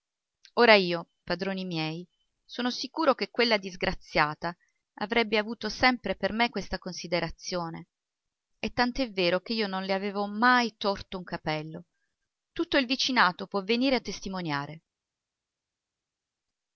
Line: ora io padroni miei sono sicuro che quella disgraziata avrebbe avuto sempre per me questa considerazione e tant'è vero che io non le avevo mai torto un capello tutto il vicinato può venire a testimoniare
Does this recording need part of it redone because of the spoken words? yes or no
no